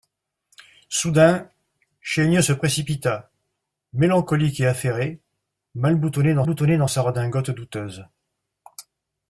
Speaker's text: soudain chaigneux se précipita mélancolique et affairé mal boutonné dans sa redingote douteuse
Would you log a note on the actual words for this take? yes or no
yes